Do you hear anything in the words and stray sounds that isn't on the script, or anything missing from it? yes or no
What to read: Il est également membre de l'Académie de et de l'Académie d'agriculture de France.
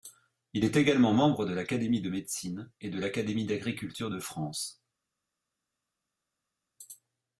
yes